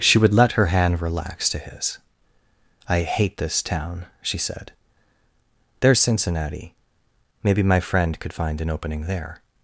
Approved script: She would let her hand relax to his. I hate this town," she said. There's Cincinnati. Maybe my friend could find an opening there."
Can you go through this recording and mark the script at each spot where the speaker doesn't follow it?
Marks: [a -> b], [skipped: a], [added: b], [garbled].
She would let her hand relax to his. I hate this town," she said. There's Cincinnati. Maybe my friend could find an opening there."